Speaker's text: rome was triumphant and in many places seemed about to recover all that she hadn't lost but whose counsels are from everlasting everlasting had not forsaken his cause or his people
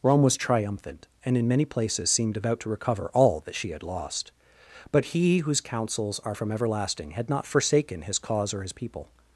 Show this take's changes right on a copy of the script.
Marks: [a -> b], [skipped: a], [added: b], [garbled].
rome was triumphant and in many places seemed about to recover all that she [hadn't -> had] lost but [added: he] whose counsels are from everlasting [skipped: everlasting] had not forsaken his cause or his people